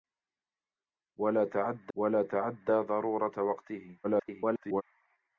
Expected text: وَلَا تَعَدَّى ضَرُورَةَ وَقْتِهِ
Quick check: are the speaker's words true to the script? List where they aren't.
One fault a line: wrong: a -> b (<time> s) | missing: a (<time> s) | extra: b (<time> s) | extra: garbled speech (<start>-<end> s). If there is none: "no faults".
extra: وَلَا تَعَدَّى (2.0 s)
extra: garbled speech (4.0-4.8 s)